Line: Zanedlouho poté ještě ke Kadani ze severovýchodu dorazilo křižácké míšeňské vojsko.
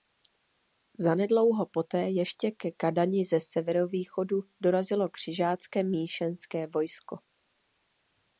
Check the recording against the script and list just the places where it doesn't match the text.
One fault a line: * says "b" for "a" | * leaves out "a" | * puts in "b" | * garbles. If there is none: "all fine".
all fine